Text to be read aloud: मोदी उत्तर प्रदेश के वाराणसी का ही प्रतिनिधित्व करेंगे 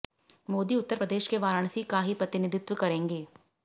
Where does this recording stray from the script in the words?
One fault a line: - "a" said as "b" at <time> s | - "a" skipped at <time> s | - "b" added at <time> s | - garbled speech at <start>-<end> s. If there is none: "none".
none